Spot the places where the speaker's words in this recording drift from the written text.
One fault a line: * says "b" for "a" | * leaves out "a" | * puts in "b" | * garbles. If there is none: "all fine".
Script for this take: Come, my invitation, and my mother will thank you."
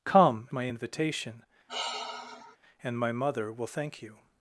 all fine